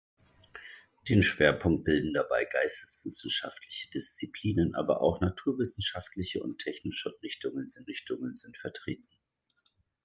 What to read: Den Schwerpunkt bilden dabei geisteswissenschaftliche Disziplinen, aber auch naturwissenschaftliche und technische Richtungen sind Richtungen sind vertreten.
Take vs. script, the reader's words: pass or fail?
pass